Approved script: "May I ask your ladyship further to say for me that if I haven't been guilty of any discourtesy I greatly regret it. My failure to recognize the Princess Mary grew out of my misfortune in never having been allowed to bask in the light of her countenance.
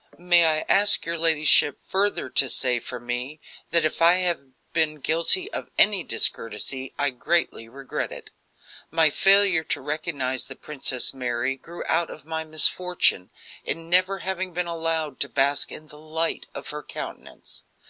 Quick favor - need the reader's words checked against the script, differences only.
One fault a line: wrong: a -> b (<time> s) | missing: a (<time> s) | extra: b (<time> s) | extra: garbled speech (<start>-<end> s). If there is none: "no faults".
wrong: haven't -> have (4.1 s)